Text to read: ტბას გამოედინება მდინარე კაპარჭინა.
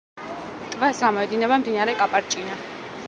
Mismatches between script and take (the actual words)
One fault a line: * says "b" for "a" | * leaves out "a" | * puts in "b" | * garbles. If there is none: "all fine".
all fine